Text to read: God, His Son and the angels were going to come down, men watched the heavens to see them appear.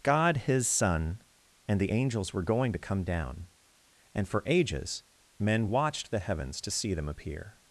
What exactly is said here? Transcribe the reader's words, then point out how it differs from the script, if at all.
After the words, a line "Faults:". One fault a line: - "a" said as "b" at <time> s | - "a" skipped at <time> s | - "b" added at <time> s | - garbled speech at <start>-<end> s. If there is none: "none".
God, His Son and the angels were going to come down, and for ages men watched the heavens to see them appear.
Faults:
- "and for ages" added at 4.1 s